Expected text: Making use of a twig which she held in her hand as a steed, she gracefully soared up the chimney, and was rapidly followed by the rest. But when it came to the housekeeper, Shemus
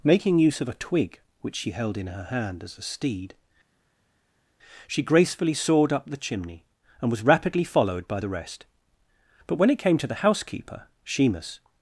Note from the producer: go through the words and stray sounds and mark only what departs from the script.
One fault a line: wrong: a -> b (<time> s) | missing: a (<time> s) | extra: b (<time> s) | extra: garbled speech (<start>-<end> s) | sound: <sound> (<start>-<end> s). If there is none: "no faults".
no faults